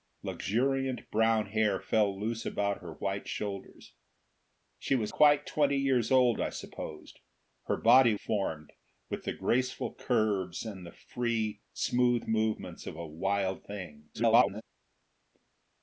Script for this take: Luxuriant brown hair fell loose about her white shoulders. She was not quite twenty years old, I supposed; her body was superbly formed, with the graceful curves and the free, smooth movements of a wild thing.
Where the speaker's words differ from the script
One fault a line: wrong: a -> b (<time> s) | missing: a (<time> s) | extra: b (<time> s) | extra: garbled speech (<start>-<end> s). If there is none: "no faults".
missing: not (5.1 s)
missing: was superbly (8.1 s)
extra: garbled speech (14.1-14.6 s)